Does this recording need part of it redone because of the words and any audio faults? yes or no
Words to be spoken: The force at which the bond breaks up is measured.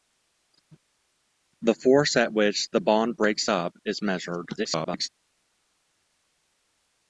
yes